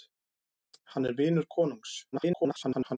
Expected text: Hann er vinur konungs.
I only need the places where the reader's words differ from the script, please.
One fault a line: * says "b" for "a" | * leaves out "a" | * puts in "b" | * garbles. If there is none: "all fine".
* garbles